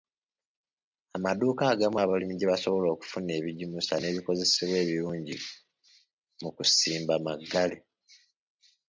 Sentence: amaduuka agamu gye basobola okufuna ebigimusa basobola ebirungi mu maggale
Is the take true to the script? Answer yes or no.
no